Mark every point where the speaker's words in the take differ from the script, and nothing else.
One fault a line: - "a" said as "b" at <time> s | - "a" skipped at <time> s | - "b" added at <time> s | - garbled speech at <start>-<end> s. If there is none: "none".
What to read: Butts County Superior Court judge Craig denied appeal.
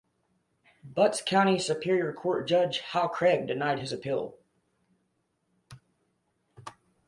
- "Hal" added at 2.8 s
- "his" added at 3.8 s